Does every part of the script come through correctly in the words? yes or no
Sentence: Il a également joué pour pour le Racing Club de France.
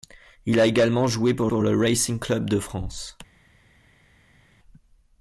yes